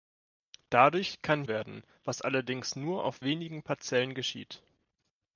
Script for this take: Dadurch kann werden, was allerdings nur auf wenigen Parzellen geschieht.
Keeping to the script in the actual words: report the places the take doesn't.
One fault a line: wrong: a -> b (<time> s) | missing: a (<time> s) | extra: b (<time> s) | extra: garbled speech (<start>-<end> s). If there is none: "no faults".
no faults